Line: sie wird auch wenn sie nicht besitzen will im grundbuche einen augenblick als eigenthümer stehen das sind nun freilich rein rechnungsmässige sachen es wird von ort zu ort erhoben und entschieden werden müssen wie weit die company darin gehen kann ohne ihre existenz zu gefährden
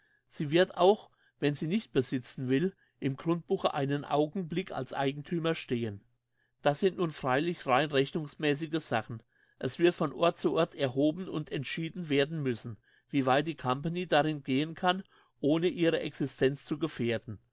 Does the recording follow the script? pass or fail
pass